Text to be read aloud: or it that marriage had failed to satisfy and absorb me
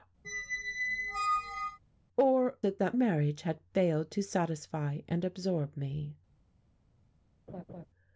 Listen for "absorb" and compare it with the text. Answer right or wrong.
right